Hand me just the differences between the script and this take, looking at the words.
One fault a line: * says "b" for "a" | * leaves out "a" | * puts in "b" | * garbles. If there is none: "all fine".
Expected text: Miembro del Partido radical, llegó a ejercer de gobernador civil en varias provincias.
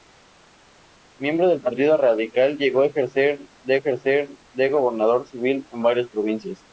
* puts in "ejercer de"